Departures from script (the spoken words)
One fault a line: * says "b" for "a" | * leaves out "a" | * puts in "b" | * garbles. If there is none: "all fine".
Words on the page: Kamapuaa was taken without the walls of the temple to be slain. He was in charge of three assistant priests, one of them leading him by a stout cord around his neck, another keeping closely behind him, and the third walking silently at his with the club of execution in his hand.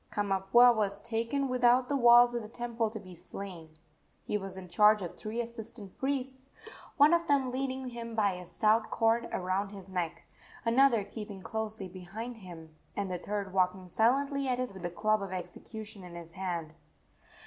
all fine